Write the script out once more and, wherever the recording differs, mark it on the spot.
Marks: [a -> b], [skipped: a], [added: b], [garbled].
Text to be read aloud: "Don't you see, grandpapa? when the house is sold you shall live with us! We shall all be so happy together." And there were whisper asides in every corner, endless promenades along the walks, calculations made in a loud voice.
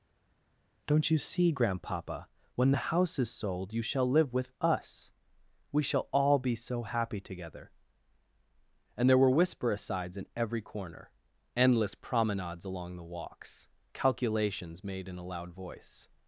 "Don't you see, grandpapa? when the house is sold you shall live with us! We shall all be so happy together." And there were whisper asides in every corner, endless promenades along the walks, calculations made in a loud voice.